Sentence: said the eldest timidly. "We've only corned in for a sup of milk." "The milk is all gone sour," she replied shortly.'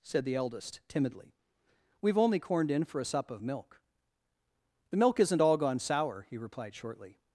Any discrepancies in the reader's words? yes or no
yes